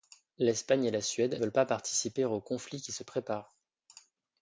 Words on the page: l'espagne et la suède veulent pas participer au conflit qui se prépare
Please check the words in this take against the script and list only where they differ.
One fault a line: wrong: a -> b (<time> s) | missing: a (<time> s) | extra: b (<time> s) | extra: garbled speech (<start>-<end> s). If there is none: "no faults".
no faults